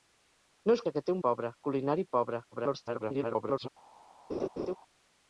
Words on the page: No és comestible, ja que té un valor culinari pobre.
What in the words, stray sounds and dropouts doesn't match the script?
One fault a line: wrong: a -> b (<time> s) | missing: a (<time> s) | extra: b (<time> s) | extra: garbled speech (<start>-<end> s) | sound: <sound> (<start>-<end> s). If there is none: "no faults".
missing: comestible (0.8 s)
wrong: valor -> pobre (1.3 s)
extra: garbled speech (2.5-3.7 s)
sound: laugh (4.3-4.8 s)